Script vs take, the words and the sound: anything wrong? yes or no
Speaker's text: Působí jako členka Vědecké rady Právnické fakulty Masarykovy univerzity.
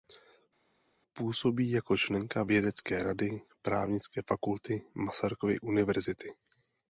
no